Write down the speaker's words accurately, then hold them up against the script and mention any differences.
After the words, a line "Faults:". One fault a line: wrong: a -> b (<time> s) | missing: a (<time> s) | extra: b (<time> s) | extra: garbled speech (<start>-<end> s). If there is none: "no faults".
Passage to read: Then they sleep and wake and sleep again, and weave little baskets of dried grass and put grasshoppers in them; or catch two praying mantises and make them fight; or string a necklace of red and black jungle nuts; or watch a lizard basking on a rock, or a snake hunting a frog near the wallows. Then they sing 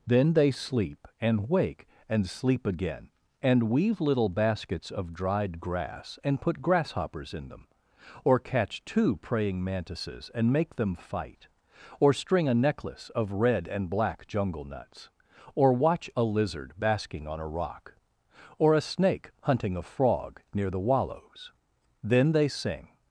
Then they sleep and wake and sleep again, and weave little baskets of dried grass and put grasshoppers in them; or catch two praying mantises and make them fight; or string a necklace of red and black jungle nuts; or watch a lizard basking on a rock, or a snake hunting a frog near the wallows. Then they sing
Faults:
no faults